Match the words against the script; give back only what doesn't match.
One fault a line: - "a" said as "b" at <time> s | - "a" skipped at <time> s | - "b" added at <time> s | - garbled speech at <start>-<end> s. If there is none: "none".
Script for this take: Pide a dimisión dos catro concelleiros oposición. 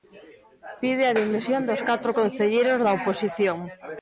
- "da" added at 2.8 s